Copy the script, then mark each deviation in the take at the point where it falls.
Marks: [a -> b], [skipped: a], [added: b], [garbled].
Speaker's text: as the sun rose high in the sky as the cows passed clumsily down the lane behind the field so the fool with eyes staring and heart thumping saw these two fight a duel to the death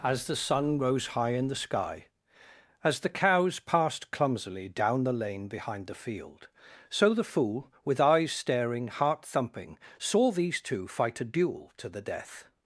as the sun rose high in the sky as the cows passed clumsily down the lane behind the field so the fool with eyes staring [skipped: and] heart thumping saw these two fight a duel to the death